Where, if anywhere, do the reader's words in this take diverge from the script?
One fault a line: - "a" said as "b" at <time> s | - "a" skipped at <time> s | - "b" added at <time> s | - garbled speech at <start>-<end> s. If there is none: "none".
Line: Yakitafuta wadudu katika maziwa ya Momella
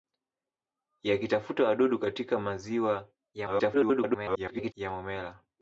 - garbled speech at 3.3-4.7 s